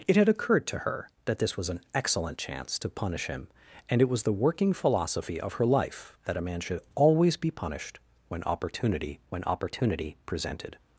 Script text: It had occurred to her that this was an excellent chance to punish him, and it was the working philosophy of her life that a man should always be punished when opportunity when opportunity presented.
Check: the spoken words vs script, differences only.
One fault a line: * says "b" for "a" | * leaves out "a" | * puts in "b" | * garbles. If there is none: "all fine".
all fine